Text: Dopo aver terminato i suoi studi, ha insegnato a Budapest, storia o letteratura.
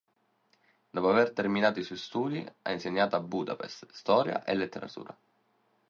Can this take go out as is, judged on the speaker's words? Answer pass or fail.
fail